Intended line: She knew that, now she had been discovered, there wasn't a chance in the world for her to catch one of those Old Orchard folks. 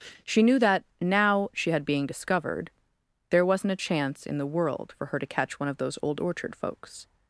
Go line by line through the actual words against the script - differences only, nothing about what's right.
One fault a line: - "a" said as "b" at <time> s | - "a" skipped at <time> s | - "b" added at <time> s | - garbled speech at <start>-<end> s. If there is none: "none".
- "been" said as "being" at 1.9 s